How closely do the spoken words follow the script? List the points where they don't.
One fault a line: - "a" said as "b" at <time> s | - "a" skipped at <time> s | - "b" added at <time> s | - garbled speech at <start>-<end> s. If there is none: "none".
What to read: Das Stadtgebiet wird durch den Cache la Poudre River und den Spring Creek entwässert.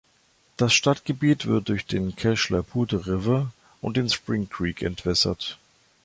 none